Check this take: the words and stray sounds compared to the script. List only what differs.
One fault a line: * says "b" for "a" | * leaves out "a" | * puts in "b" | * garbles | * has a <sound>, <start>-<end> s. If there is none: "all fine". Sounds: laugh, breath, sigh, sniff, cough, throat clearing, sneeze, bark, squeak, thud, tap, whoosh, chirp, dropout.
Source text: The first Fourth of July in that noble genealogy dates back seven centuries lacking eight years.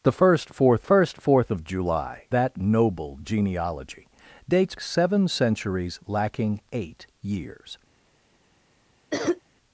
* puts in "first Fourth"
* leaves out "in"
* leaves out "back"
* has a cough, 9.1-9.4 s